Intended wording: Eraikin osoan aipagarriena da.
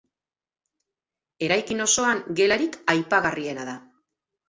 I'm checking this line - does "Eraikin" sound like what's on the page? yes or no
yes